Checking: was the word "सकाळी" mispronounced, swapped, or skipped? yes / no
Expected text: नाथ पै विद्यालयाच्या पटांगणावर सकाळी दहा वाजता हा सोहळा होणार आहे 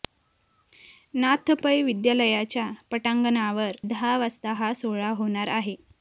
yes